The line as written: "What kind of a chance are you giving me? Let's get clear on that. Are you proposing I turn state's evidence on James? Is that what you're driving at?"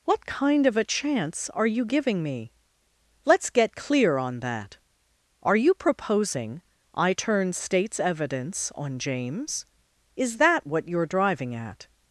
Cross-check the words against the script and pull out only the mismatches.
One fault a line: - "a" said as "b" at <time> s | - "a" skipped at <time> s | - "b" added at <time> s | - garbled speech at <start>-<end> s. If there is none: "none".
none